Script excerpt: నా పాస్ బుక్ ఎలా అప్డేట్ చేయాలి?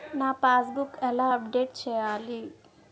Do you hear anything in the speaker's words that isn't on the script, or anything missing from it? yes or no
no